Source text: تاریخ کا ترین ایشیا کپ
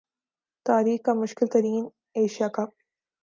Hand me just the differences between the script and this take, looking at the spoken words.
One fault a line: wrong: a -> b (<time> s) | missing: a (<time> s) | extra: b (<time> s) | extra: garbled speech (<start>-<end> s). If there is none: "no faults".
extra: مشکل (1.1 s)